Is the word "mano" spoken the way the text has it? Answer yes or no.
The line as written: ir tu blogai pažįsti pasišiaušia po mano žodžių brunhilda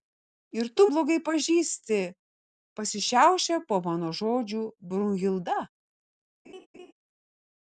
yes